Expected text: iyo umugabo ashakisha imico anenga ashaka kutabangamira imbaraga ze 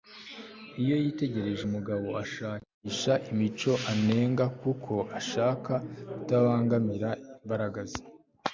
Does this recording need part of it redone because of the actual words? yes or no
yes